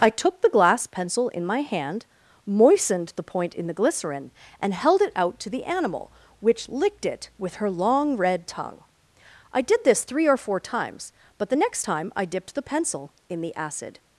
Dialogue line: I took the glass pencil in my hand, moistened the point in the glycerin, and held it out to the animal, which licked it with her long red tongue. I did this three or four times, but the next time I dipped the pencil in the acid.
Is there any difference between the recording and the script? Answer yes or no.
no